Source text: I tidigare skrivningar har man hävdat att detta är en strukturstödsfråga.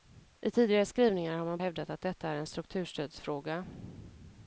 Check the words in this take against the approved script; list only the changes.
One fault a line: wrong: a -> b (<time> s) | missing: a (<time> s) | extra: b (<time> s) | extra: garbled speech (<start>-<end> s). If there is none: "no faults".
no faults